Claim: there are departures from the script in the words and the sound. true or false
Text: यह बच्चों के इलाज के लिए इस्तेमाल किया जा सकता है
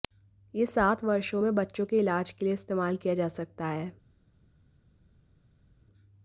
true